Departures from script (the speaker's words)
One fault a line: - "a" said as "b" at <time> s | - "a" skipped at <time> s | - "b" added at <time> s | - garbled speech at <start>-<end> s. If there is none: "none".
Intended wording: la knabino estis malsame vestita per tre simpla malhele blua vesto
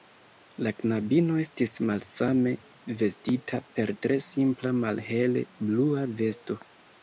none